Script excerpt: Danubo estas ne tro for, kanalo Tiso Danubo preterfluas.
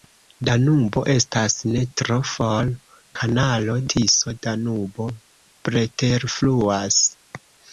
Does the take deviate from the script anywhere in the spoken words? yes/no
no